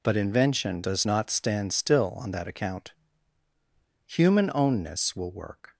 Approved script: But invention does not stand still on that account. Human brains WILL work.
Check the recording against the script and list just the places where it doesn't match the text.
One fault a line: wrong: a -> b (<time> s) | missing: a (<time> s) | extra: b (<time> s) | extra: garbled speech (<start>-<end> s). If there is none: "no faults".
wrong: brains -> ownness (4.5 s)